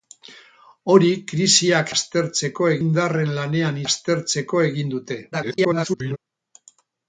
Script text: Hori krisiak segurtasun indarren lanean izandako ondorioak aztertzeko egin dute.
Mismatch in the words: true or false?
true